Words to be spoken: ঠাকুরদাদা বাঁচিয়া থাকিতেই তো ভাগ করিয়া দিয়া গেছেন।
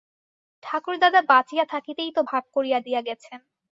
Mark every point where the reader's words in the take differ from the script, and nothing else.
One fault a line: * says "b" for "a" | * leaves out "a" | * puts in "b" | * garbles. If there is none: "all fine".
all fine